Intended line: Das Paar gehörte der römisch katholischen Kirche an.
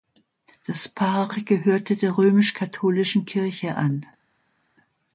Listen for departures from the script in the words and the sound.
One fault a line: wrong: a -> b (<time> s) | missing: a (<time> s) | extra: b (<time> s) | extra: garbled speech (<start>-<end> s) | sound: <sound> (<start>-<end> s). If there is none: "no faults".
no faults